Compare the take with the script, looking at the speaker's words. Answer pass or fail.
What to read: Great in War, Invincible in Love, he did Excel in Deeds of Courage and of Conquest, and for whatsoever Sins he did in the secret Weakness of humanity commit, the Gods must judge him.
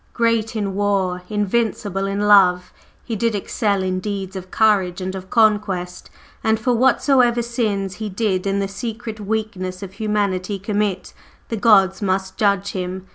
pass